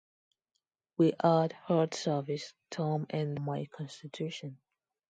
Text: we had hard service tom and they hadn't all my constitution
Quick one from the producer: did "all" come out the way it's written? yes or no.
no